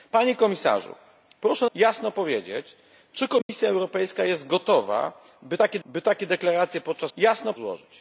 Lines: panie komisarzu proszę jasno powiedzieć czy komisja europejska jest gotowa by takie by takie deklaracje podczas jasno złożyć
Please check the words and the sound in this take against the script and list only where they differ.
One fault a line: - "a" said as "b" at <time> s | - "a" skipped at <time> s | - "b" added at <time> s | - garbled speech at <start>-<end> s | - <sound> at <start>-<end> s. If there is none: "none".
- dropout at 3.4-3.5 s